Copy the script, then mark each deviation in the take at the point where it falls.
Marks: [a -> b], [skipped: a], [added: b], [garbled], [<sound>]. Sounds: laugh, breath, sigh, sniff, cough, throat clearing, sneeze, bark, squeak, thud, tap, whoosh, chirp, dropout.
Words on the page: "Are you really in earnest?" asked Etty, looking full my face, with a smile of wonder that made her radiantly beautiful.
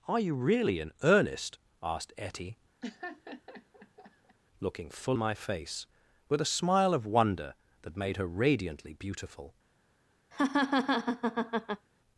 "Are you really in earnest?" asked Etty, [laugh] looking full my face, with a smile of wonder that made her radiantly beautiful. [laugh]